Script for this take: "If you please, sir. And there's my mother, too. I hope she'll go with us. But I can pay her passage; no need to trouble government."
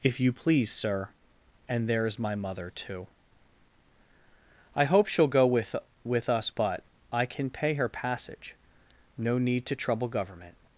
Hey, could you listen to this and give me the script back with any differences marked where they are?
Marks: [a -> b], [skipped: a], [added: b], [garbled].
"If you please, sir. And there's my mother, too. I hope she'll go with [added: with] us. But I can pay her passage; no need to trouble government."